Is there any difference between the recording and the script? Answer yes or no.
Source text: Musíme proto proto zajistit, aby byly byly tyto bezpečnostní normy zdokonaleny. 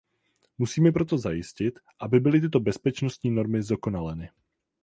yes